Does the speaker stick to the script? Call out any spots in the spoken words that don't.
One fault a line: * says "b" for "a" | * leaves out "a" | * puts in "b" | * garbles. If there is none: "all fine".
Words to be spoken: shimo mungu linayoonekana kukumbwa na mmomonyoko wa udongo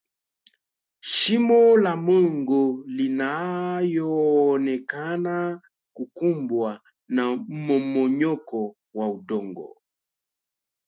* puts in "la"